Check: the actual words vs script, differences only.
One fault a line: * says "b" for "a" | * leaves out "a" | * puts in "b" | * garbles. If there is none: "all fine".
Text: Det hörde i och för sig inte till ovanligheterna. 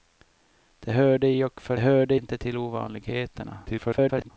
* says "hörde" for "sig"
* garbles